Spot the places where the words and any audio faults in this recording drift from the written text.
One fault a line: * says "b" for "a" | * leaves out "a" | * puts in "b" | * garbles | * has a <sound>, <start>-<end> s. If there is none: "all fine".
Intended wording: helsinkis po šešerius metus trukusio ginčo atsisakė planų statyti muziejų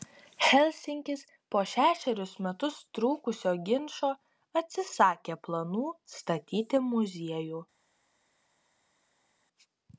all fine